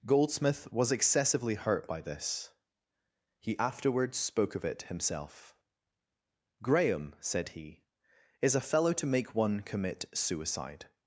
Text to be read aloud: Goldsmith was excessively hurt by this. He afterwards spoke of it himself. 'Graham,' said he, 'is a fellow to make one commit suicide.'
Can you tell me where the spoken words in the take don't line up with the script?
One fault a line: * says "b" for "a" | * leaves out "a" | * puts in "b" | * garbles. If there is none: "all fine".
all fine